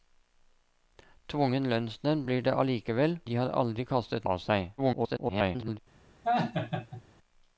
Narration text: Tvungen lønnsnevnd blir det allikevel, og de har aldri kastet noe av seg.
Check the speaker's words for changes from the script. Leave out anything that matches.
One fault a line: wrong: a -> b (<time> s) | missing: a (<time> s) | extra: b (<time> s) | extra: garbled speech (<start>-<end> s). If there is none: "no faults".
missing: og (3.2 s)
missing: noe (4.3 s)
extra: garbled speech (4.8-5.8 s)